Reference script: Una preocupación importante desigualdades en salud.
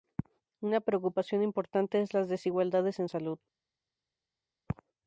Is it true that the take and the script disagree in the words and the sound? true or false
true